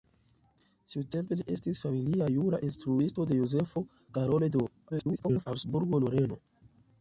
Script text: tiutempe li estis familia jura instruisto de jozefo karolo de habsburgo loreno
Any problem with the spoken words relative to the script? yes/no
yes